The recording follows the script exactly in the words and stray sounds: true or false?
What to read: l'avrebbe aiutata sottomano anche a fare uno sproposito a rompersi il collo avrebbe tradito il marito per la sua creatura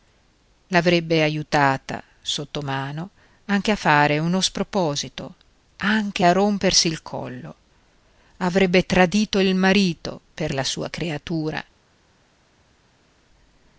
false